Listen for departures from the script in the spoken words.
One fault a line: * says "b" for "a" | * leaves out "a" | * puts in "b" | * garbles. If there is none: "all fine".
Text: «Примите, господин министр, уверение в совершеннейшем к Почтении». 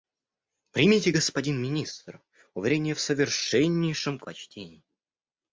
all fine